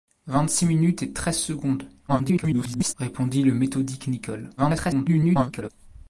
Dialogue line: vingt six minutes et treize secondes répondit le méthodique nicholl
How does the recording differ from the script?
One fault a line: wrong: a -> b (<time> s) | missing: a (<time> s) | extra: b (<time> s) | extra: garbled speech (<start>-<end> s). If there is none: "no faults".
extra: garbled speech (2.1-2.9 s)
extra: garbled speech (4.6-5.7 s)